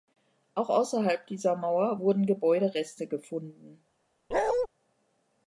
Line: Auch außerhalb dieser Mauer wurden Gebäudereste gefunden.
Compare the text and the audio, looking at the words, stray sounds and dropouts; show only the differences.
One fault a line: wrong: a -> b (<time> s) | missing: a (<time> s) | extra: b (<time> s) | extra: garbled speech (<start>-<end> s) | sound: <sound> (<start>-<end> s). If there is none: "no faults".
sound: bark (4.3-4.7 s)